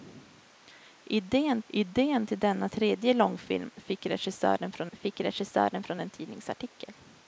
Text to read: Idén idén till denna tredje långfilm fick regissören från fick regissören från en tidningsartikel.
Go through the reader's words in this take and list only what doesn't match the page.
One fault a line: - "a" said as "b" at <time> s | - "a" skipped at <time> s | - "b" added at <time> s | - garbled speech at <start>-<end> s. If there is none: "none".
none